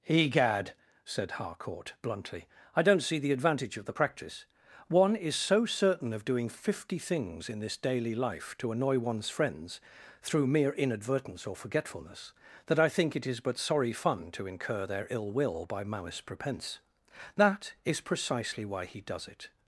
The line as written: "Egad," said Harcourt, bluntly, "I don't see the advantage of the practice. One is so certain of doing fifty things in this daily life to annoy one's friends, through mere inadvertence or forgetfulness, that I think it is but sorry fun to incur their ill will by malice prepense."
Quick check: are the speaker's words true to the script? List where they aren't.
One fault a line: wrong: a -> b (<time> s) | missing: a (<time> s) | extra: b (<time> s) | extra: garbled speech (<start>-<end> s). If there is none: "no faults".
extra: That is precisely why he does it (17.3 s)